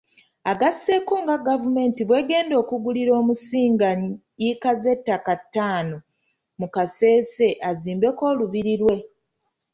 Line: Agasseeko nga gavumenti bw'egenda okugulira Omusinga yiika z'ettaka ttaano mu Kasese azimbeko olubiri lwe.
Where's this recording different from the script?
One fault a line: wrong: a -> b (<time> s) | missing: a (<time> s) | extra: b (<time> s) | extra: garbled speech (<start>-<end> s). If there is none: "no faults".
no faults